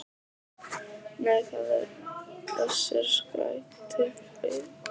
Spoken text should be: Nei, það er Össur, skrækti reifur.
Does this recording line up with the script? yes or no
yes